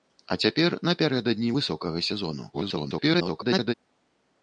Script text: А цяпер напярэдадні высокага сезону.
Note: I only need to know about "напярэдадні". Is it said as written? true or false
true